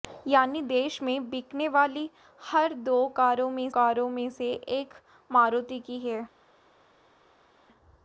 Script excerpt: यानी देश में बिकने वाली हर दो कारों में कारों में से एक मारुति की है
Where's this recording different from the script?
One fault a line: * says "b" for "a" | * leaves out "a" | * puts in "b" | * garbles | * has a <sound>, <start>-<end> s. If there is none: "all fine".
all fine